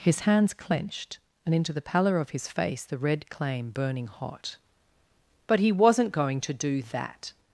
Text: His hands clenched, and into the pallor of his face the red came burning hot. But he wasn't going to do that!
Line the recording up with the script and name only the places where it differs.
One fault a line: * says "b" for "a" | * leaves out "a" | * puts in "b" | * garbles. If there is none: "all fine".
* says "claim" for "came"